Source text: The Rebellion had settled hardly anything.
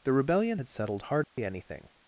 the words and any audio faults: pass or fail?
fail